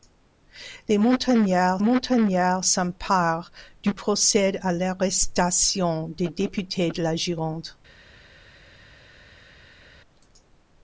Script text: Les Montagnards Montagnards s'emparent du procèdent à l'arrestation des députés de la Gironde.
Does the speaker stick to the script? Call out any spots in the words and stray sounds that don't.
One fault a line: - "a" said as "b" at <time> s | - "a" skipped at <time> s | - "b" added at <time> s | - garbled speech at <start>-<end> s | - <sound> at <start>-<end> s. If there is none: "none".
none